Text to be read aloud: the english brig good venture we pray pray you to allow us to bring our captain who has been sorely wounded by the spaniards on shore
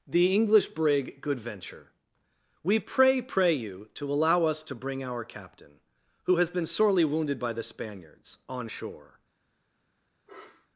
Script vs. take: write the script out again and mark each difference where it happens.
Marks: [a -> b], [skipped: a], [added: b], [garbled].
the english brig good venture we pray pray you to allow us to bring our captain who has been sorely wounded by the spaniards on shore